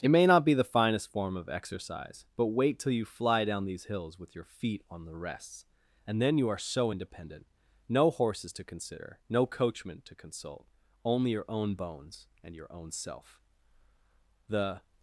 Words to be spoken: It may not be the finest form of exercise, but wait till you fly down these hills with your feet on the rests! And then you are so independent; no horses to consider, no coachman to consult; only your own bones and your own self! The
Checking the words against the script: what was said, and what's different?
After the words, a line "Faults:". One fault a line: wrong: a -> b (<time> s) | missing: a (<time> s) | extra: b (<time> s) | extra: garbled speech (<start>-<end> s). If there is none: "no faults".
It may not be the finest form of exercise, but wait till you fly down these hills with your feet on the rests! And then you are so independent; no horses to consider, no coachman to consult; only your own bones and your own self! The
Faults:
no faults